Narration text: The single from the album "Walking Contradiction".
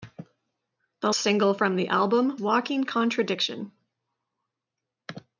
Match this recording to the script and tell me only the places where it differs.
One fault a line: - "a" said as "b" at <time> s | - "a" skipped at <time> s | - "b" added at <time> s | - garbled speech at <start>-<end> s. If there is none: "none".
none